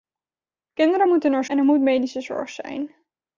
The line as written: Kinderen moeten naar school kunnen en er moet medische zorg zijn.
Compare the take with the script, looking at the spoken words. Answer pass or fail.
fail